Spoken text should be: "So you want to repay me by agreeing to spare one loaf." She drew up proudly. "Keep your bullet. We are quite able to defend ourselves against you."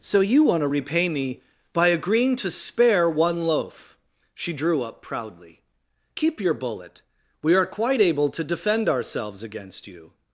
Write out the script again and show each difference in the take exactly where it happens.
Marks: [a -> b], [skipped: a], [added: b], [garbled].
"So you want to repay me by agreeing to spare one loaf." She drew up proudly. "Keep your bullet. We are quite able to defend ourselves against you."